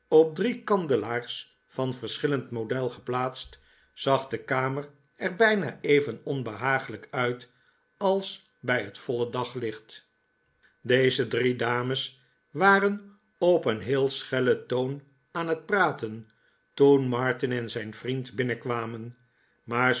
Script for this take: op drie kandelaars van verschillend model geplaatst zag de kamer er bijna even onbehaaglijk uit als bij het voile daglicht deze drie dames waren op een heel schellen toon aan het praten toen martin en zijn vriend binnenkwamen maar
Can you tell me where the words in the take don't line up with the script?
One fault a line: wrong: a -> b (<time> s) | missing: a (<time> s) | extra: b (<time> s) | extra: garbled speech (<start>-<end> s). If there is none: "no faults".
no faults